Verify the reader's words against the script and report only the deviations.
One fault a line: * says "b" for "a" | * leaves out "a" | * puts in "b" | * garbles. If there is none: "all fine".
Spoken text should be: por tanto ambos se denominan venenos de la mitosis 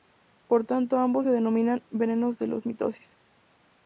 all fine